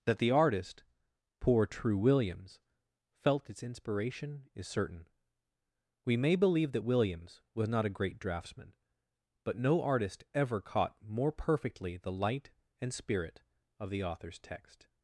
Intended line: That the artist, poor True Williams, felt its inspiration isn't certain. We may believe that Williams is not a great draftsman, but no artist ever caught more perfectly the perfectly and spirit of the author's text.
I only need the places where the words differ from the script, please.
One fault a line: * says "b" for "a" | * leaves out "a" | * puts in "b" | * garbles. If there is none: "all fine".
* says "is" for "isn't"
* says "was" for "is"
* says "light" for "perfectly"